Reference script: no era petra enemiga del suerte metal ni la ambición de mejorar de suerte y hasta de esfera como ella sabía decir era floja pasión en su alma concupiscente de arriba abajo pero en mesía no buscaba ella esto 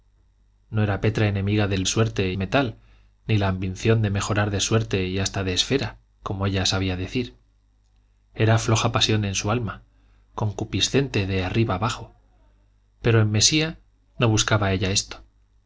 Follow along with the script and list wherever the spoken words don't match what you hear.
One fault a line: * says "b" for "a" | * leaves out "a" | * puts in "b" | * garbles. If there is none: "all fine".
all fine